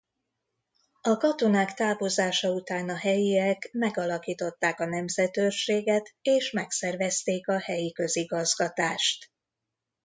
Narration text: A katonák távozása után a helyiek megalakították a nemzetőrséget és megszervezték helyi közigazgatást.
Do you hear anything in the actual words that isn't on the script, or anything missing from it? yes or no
yes